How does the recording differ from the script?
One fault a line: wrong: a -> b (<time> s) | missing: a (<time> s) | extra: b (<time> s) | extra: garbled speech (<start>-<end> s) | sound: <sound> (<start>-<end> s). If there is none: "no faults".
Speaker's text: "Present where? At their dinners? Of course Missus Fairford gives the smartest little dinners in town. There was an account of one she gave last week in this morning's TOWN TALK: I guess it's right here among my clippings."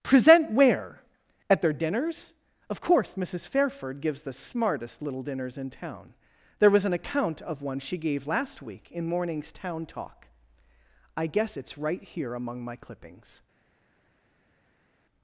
missing: this (9.1 s)